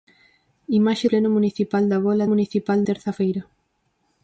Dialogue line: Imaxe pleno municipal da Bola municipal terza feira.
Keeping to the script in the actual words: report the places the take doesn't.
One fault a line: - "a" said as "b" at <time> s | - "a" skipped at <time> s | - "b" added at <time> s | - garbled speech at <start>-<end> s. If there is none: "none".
none